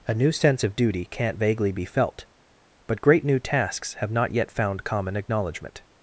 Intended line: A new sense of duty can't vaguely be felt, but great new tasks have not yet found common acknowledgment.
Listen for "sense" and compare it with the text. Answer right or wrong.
right